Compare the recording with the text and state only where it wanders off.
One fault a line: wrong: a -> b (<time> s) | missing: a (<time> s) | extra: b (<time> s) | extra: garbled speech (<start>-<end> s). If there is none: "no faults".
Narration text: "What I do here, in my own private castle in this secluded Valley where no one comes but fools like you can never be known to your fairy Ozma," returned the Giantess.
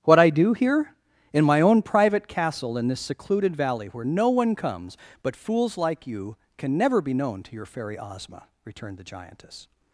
no faults